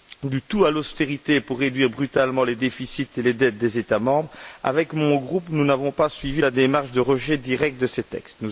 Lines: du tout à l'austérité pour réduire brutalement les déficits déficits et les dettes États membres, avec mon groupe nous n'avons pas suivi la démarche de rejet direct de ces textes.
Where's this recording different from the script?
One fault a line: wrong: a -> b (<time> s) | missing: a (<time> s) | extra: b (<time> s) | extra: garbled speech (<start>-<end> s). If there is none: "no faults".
missing: déficits (3.1 s)
extra: des (3.6 s)